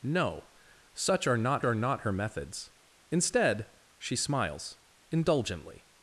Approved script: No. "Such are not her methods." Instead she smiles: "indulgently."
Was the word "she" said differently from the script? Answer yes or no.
no